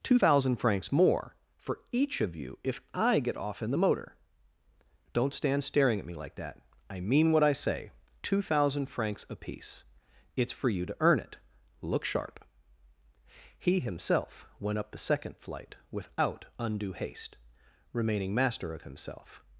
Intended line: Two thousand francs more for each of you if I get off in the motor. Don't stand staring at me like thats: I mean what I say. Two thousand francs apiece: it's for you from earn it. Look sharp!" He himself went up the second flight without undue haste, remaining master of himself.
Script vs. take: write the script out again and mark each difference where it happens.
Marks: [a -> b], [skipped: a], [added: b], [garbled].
Two thousand francs more for each of you if I get off in the motor. Don't stand staring at me like [thats: -> that] I mean what I say. Two thousand francs apiece: it's for you [from -> to] earn it. Look sharp!" He himself went up the second flight without undue haste, remaining master of himself.